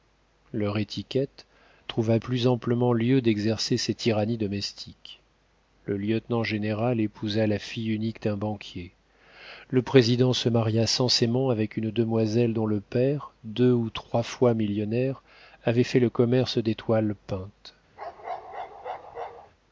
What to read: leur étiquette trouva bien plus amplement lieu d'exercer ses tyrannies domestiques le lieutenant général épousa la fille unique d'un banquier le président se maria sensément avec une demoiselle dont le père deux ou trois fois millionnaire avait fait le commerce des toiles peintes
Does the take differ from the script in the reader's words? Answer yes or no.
yes